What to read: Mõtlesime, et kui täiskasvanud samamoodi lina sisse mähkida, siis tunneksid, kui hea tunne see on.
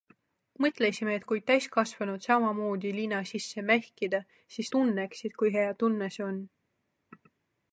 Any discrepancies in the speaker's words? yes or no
no